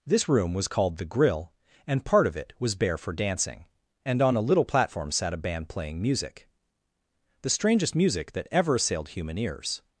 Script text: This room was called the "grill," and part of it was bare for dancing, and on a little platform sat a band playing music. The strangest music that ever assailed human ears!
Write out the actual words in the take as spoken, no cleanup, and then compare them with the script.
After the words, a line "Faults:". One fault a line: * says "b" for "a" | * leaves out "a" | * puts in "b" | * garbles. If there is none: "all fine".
This room was called the "grill," and part of it was bare for dancing, and on a little platform sat a band playing music. The strangest music that ever assailed human ears!
Faults:
all fine